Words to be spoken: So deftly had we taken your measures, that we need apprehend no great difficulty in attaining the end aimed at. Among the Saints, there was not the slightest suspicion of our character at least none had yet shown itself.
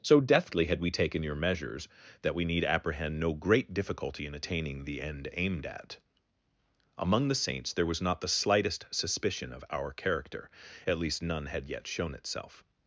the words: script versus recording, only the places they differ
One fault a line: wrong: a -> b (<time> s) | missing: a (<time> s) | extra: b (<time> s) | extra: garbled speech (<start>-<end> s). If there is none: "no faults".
no faults